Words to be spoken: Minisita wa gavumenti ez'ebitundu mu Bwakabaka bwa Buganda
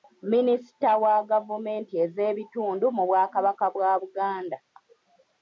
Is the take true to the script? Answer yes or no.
yes